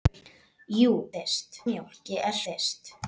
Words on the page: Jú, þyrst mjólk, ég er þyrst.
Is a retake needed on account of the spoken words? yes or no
no